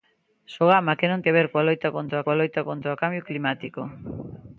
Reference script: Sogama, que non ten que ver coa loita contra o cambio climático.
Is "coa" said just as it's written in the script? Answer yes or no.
yes